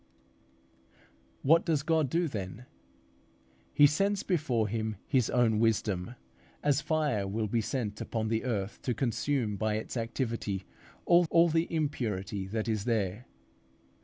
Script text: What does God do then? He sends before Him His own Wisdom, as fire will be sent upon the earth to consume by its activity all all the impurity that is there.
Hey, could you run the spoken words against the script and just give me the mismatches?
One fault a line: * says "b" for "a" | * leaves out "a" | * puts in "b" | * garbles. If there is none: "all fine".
all fine